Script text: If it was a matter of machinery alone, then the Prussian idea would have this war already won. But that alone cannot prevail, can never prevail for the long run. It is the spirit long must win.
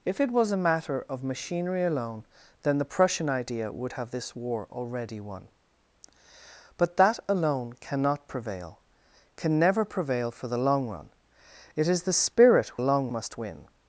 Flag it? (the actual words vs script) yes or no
no